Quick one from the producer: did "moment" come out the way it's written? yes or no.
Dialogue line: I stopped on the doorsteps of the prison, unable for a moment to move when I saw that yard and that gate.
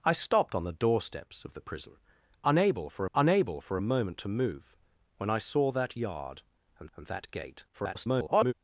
yes